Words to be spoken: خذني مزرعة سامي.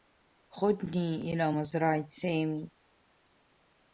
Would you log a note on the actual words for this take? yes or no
yes